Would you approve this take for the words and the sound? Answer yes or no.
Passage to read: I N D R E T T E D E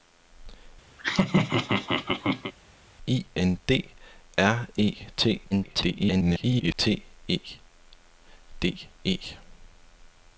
no